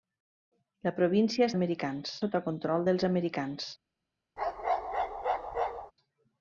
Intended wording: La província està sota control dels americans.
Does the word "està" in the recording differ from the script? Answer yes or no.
yes